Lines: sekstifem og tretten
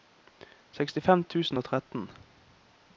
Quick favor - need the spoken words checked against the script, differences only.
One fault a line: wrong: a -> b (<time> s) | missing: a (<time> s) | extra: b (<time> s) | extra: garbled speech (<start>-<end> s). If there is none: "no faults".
extra: tusen (1.2 s)